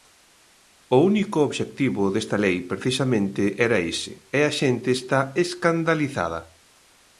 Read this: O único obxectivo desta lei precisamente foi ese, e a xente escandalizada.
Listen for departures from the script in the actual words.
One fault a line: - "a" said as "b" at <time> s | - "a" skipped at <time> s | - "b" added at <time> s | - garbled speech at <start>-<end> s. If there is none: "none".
- "foi" said as "era" at 3.7 s
- "está" added at 5.0 s